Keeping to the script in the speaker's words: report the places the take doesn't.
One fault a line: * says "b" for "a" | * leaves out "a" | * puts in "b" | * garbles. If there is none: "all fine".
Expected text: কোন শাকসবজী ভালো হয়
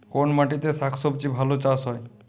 * puts in "মাটিতে"
* puts in "চাষ"